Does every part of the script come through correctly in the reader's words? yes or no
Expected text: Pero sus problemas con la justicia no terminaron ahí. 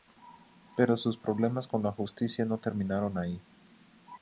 yes